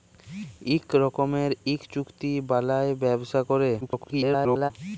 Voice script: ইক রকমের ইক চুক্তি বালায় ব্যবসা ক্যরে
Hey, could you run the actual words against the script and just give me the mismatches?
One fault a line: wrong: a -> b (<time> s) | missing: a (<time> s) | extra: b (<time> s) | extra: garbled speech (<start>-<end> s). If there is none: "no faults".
extra: garbled speech (3.8-4.7 s)